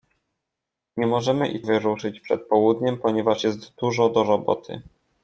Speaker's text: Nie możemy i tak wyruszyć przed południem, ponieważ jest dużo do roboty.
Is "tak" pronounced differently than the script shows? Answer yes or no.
yes